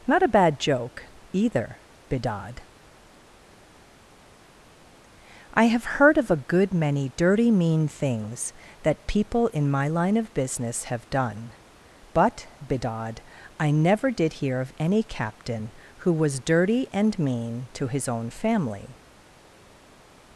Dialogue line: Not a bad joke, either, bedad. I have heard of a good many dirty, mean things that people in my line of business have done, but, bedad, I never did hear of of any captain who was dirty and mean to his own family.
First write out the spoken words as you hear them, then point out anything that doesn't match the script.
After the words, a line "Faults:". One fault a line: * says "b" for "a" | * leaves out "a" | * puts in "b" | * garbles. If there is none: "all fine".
Not a bad joke, either, bedad. I have heard of a good many dirty, mean things that people in my line of business have done, but, bedad, I never did hear of any captain who was dirty and mean to his own family.
Faults:
* leaves out "of"